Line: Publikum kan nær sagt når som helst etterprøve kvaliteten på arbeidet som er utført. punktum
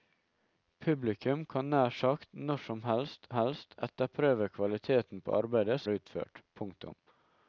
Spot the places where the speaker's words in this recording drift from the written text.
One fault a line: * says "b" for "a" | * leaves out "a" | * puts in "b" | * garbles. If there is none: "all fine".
* puts in "helst"
* leaves out "som"